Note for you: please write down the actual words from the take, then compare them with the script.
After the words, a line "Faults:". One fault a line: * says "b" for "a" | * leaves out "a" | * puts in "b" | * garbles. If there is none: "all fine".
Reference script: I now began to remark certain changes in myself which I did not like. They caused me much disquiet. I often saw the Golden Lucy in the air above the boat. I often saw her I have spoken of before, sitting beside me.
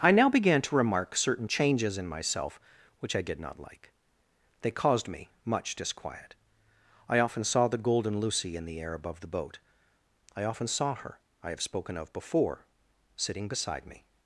I now began to remark certain changes in myself which I did not like. They caused me much disquiet. I often saw the Golden Lucy in the air above the boat. I often saw her I have spoken of before, sitting beside me.
Faults:
all fine